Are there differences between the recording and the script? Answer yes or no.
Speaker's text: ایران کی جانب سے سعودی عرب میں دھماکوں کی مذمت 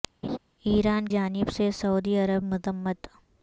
yes